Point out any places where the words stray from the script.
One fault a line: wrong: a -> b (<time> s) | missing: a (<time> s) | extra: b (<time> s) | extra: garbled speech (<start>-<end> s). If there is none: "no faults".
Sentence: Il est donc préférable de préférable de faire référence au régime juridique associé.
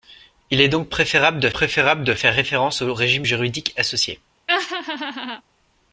no faults